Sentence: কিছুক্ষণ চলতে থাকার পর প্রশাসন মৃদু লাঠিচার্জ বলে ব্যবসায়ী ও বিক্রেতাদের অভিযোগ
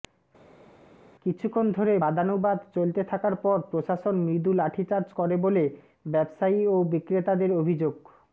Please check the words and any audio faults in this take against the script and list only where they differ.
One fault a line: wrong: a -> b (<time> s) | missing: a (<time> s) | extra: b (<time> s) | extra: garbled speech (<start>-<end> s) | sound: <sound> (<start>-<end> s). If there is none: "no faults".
extra: ধরে বাদানুবাদ (1.7 s)
extra: করে (5.1 s)